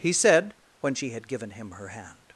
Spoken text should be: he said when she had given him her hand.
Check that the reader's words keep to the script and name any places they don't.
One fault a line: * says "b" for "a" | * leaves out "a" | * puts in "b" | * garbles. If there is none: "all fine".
all fine